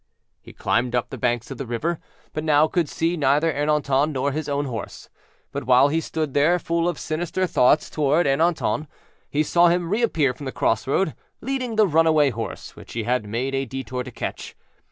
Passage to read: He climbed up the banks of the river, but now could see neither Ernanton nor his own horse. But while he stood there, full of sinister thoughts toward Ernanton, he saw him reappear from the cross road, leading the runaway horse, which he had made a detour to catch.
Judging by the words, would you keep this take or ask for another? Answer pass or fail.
pass